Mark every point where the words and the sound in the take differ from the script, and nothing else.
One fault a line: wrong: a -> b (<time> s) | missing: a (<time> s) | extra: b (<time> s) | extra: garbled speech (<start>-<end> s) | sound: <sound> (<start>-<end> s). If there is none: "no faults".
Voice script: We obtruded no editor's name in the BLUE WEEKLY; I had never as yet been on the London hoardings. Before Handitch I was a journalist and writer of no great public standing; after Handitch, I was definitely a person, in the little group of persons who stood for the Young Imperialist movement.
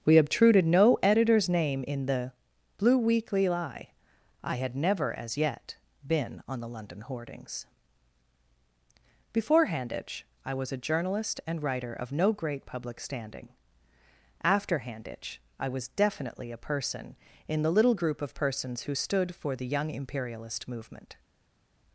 extra: lie (3.5 s)